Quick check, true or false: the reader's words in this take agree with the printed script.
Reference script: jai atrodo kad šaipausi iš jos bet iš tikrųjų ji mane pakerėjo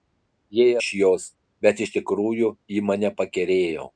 false